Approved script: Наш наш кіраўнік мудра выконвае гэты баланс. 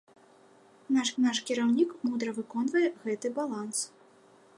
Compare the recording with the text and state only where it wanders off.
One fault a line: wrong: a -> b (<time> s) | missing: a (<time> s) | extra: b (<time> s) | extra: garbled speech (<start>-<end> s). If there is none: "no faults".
no faults